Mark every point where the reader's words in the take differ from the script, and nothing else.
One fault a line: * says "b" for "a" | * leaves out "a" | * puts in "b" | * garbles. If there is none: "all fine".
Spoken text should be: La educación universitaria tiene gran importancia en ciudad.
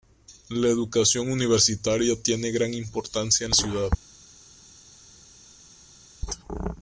all fine